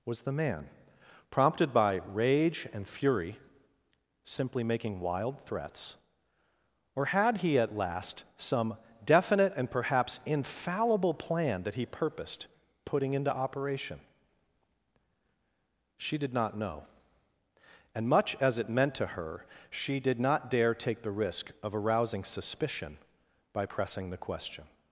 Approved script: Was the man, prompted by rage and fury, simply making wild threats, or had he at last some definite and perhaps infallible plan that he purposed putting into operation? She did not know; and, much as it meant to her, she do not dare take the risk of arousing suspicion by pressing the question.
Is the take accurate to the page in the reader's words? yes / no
no